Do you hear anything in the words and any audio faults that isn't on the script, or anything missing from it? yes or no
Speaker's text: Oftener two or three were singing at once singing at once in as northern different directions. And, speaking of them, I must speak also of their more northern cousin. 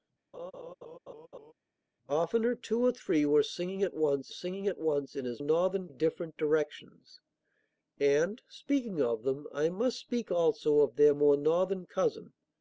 yes